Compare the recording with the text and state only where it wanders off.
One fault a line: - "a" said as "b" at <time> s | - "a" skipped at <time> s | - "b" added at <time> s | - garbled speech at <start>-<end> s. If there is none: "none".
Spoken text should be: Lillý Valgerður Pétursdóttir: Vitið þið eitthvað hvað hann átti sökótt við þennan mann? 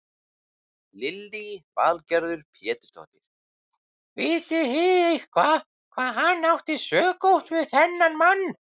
none